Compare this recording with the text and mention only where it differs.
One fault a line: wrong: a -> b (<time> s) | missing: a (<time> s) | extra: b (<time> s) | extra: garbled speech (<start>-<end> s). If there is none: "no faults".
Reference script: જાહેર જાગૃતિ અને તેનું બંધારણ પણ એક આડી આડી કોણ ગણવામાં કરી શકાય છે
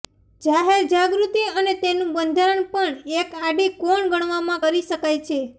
missing: આડી (3.7 s)